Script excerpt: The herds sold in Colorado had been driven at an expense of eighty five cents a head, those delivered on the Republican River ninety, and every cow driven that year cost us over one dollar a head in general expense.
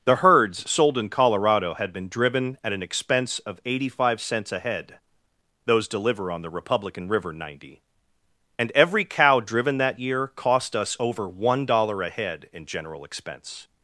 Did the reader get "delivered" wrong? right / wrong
wrong